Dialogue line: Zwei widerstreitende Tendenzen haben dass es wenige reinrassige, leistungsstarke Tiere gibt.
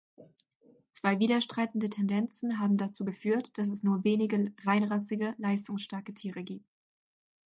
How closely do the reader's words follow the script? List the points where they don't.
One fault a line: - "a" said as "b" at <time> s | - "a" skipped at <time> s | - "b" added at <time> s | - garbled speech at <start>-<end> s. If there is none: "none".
- "dazu geführt" added at 2.8 s
- "nur" added at 3.8 s